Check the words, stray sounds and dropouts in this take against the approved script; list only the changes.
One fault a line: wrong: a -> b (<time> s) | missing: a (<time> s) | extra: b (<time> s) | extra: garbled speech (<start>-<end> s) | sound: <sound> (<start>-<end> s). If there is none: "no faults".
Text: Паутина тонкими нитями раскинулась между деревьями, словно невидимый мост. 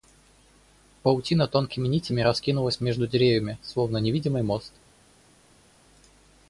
no faults